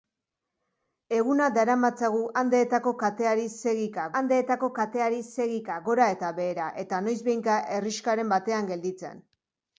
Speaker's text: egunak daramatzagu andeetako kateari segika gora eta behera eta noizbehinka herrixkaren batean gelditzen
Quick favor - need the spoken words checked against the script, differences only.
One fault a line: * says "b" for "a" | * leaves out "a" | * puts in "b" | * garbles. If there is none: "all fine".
* puts in "andeetako kateari segika"